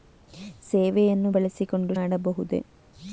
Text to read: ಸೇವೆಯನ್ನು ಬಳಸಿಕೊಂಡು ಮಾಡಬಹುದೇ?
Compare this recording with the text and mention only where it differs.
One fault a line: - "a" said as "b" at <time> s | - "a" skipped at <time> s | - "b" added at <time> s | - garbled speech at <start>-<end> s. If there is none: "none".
none